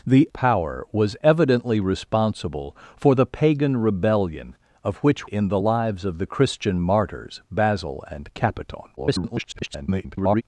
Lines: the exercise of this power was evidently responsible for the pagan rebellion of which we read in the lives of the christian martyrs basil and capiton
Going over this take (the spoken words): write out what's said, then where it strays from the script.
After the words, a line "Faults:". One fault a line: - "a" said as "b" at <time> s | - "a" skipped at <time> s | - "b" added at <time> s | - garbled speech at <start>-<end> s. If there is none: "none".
the power was evidently responsible for the pagan rebellion of which in the lives of the christian martyrs basil and capiton [garbled]
Faults:
- "exercise of this" skipped at 0.3 s
- "we read" skipped at 5.3 s
- garbled speech at 9.0-10.4 s